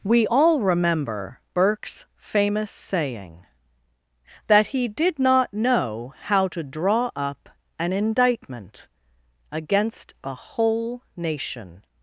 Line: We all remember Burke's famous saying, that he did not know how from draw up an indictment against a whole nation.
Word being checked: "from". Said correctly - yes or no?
no